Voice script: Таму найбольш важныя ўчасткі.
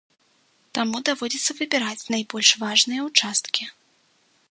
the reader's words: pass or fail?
fail